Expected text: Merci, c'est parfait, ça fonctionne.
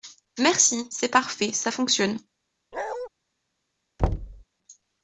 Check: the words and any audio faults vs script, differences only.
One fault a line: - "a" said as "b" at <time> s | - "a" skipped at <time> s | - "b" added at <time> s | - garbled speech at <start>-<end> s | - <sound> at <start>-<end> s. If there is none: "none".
- bark at 2.7-3.1 s
- thud at 4.0-4.4 s